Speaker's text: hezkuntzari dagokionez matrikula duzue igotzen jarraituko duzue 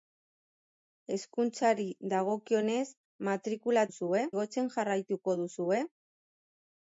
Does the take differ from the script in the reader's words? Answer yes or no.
no